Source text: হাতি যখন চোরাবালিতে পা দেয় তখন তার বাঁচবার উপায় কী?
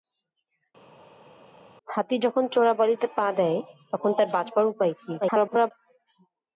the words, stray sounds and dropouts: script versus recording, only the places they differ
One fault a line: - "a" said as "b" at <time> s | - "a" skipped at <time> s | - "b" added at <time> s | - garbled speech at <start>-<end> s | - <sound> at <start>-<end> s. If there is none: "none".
- garbled speech at 5.2-5.7 s